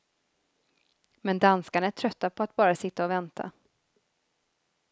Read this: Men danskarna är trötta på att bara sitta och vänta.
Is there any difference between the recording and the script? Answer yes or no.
no